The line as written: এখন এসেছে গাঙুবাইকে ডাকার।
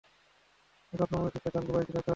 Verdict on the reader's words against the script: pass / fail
fail